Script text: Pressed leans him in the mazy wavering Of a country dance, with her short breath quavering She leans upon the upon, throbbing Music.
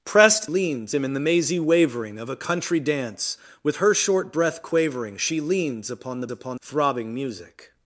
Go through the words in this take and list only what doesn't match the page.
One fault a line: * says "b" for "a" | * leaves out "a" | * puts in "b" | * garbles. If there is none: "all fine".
all fine